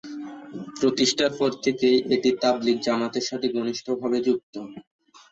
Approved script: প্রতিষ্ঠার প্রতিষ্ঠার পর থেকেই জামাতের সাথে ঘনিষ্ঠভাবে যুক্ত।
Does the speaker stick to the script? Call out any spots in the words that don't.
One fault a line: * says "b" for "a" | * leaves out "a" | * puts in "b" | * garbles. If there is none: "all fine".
* leaves out "প্রতিষ্ঠার"
* puts in "এটি তাবলিগ"